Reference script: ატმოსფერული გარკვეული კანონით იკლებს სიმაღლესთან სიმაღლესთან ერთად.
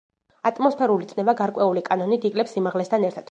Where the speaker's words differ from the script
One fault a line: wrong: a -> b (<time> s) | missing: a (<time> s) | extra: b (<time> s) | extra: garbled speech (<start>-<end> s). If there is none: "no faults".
extra: წნევა (1.1 s)
missing: სიმაღლესთან (3.1 s)